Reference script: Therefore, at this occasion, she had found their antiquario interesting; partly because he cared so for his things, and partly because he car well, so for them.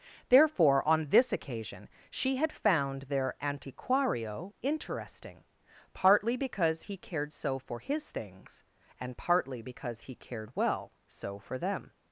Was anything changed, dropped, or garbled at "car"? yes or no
yes